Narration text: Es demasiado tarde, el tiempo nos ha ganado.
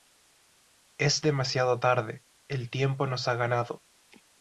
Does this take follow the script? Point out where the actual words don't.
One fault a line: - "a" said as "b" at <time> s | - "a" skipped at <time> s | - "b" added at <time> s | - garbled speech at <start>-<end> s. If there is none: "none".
none